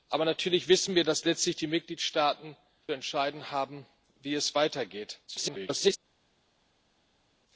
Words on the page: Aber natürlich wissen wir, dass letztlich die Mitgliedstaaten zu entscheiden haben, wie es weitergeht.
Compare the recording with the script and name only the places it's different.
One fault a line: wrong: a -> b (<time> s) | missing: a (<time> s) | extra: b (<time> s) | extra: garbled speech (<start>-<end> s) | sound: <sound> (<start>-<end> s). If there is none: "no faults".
missing: zu (2.6 s)
extra: garbled speech (5.3-6.0 s)